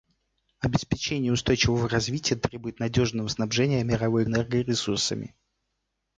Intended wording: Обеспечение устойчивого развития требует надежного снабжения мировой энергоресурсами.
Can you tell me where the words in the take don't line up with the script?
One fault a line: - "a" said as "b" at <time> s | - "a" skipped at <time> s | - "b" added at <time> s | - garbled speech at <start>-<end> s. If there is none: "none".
none